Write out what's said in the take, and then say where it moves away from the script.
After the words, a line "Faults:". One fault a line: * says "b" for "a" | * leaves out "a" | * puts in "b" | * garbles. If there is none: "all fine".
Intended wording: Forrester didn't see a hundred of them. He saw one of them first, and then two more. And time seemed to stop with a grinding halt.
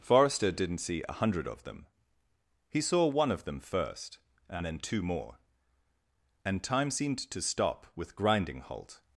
Forrester didn't see a hundred of them. He saw one of them first, and then two more. And time seemed to stop with grinding halt.
Faults:
* leaves out "a"